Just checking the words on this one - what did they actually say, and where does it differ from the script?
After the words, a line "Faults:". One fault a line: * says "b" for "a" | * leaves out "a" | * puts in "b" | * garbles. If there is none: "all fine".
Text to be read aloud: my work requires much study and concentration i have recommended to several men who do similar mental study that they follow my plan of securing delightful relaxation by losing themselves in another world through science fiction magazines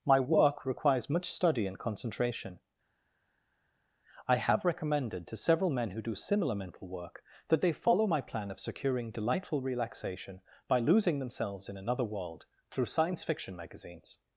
my work requires much study and concentration i have recommended to several men who do similar mental work that they follow my plan of securing delightful relaxation by losing themselves in another world through science fiction magazines
Faults:
* says "work" for "study"